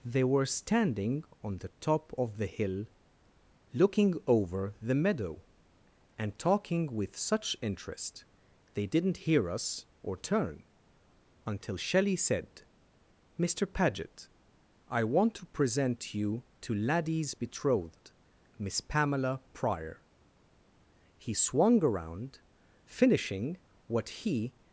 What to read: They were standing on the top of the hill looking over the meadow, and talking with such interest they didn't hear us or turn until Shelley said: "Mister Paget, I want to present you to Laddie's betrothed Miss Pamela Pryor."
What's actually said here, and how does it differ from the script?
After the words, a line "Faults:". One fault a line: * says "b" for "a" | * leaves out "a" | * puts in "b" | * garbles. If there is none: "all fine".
They were standing on the top of the hill looking over the meadow, and talking with such interest they didn't hear us or turn until Shelley said: "Mister Paget, I want to present you to Laddie's betrothed Miss Pamela Pryor." He swung around, finishing what he
Faults:
* puts in "He swung around finishing what he"